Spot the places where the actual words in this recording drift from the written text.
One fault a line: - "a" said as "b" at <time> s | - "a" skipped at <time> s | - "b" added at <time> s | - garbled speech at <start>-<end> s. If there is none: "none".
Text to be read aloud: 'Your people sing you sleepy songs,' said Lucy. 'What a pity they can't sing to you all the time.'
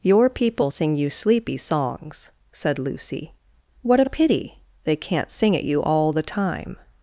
- "to" said as "at" at 5.6 s